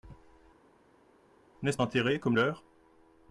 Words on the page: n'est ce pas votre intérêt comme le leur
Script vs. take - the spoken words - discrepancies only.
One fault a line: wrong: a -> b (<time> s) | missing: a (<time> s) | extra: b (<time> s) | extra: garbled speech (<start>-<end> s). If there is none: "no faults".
missing: pas votre (1.8 s)
missing: le (2.4 s)